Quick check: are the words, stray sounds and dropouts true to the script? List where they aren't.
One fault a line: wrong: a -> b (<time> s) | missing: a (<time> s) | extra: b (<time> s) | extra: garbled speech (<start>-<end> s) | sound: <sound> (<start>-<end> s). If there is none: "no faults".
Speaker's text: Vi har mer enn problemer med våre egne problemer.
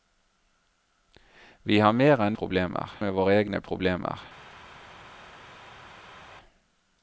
no faults